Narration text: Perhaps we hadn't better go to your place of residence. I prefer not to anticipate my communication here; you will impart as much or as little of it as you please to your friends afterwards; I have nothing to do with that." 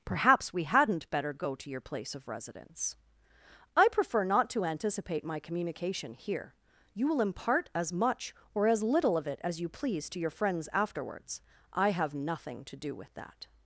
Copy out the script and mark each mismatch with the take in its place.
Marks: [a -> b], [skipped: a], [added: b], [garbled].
Perhaps we hadn't better go to your place of residence. I prefer not to anticipate my communication here; you will impart as much or as little of it as you please to your friends afterwards; I have nothing to do with that."